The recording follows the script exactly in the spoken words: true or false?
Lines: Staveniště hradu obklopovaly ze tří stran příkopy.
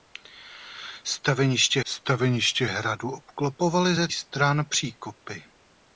false